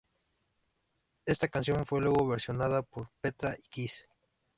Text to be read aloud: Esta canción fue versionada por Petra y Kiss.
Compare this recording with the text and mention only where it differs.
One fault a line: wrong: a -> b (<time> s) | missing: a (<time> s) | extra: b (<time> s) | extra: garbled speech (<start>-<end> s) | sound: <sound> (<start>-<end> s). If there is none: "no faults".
extra: luego (2.0 s)